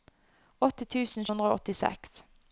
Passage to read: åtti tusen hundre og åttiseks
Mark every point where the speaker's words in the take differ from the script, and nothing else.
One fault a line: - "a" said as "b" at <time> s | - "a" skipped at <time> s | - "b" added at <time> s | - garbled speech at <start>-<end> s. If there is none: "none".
none